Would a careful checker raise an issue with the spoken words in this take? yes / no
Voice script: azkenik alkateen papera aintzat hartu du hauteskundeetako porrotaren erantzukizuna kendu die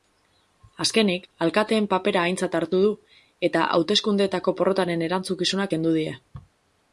yes